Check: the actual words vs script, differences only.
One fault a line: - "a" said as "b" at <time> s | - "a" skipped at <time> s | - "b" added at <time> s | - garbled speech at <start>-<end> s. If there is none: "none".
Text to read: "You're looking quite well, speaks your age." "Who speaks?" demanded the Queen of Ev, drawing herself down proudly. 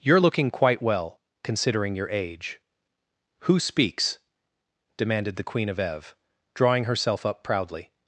- "speaks" said as "considering" at 1.4 s
- "down" said as "up" at 7.2 s